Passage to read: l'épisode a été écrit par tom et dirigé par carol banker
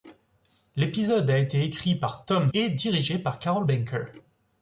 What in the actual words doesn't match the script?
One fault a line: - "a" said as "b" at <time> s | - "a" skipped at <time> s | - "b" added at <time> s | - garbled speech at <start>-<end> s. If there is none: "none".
none